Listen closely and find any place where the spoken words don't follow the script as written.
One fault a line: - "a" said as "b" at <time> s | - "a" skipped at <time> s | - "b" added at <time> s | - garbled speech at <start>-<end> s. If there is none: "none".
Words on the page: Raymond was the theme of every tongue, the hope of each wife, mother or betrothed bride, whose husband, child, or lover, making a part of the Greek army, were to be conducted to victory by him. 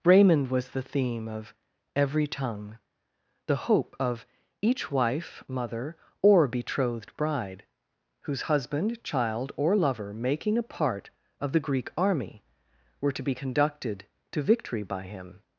none